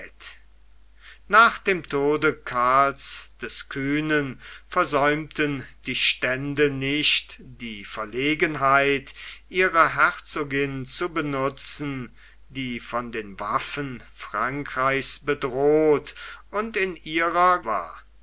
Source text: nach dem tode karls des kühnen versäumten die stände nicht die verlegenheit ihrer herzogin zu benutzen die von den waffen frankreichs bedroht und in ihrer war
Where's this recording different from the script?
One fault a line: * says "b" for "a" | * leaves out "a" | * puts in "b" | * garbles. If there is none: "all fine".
all fine